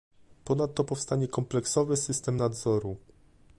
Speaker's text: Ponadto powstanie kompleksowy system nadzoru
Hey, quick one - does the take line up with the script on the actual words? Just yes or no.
yes